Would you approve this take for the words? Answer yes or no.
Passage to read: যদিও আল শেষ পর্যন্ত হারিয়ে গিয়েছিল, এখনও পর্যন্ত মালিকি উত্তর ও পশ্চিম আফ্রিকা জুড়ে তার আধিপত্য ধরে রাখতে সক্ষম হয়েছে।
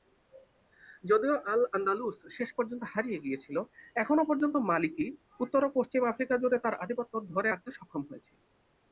no